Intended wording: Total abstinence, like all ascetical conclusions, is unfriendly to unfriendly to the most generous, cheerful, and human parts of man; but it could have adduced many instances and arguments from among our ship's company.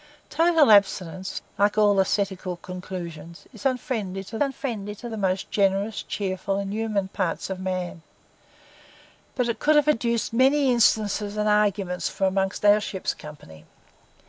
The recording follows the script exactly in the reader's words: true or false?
true